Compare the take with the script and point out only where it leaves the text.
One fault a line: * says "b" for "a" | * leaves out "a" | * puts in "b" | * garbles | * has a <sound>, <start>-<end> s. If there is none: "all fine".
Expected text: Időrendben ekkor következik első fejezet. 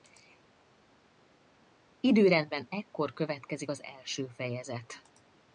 * puts in "az"